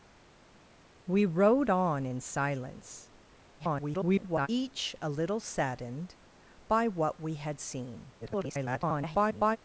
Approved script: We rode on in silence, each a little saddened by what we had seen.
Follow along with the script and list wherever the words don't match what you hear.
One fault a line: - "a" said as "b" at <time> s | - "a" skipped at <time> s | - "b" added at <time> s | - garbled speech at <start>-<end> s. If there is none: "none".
- garbled speech at 3.6-4.5 s
- garbled speech at 8.2-9.6 s